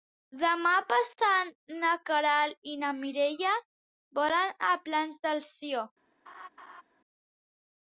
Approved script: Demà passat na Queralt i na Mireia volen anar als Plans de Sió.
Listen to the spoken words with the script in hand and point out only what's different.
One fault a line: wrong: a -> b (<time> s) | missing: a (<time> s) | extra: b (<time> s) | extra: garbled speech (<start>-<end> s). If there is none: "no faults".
missing: anar (4.6 s)